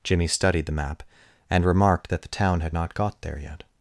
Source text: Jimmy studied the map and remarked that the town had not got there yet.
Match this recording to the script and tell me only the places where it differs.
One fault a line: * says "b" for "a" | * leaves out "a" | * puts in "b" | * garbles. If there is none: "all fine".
all fine